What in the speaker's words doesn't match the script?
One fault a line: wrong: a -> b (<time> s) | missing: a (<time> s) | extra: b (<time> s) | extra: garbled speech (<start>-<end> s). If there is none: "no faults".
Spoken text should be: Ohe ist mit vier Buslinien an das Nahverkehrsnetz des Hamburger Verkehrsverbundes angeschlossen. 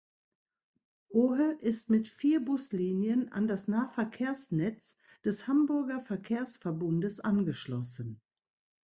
no faults